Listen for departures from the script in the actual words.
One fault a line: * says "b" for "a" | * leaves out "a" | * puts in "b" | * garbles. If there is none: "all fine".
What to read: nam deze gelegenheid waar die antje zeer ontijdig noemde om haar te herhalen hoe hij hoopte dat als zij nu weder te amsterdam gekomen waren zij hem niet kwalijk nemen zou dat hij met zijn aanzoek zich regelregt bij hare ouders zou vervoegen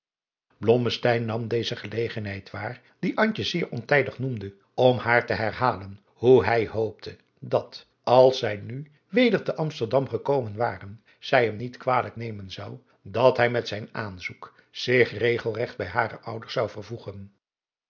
all fine